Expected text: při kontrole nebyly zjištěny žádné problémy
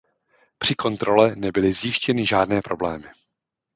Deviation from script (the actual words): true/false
false